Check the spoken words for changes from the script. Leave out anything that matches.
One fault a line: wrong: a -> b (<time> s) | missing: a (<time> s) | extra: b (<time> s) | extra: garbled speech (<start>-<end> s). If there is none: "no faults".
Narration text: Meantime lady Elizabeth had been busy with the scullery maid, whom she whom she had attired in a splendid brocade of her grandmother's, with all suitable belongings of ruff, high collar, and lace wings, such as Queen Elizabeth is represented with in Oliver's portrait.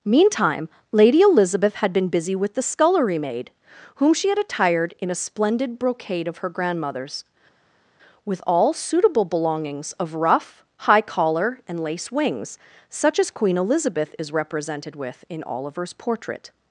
missing: whom she (4.3 s)